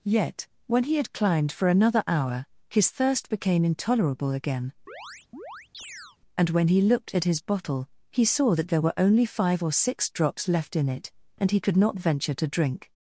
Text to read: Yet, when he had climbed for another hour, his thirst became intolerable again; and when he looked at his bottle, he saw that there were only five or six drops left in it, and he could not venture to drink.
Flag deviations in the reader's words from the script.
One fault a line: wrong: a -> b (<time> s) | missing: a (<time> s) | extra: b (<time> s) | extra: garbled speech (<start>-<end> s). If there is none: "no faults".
no faults